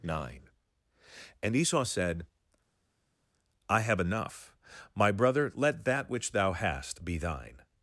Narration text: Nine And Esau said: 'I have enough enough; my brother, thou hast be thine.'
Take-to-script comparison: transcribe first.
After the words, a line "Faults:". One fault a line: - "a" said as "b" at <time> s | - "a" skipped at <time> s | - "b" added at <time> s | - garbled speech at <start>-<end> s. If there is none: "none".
Nine And Esau said: 'I have enough; my brother, let that which thou hast be thine.'
Faults:
- "enough" skipped at 4.5 s
- "let that which" added at 5.5 s